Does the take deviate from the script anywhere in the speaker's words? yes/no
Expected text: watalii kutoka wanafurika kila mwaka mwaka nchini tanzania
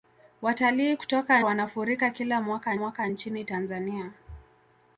no